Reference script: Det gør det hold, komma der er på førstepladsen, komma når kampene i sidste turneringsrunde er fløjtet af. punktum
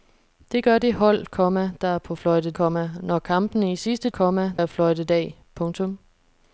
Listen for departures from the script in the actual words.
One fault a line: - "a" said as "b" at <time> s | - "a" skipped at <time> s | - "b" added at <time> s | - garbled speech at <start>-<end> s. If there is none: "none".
- "førstepladsen" said as "fløjtet" at 2.1 s
- "turneringsrunde" said as "komma" at 4.1 s